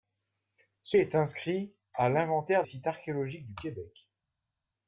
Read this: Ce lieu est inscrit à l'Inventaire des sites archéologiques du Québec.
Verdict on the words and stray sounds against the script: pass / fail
fail